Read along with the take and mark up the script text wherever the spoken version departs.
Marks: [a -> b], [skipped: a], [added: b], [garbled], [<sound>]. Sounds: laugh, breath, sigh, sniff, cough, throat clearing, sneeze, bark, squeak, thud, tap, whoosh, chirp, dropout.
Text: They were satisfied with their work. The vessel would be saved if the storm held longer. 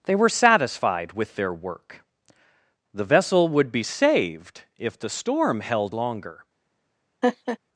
They were satisfied with their work. The vessel would be saved if the storm held longer. [laugh]